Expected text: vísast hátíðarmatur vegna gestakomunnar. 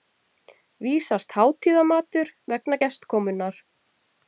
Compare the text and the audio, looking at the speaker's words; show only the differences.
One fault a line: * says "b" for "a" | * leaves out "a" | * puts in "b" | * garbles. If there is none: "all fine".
all fine